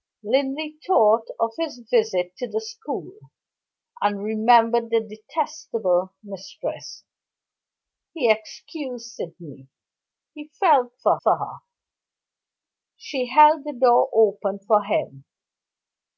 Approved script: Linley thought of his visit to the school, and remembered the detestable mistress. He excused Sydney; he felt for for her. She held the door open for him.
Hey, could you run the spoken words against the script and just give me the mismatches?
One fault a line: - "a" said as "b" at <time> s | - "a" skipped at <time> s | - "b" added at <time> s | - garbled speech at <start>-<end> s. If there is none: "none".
none